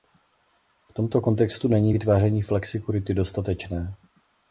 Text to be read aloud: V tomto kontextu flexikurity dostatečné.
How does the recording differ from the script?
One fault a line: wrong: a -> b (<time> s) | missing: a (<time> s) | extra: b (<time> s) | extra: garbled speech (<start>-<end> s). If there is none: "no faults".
extra: není vytváření (1.7 s)